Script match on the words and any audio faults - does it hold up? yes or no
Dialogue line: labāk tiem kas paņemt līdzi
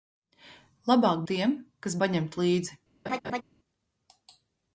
no